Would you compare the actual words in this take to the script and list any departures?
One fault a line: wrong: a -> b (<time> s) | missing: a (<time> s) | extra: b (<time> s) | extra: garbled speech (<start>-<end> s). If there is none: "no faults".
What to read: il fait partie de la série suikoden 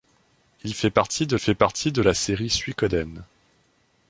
extra: fait partie de (1.4 s)